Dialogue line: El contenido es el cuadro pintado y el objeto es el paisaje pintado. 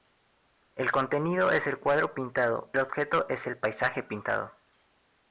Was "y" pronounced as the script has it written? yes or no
no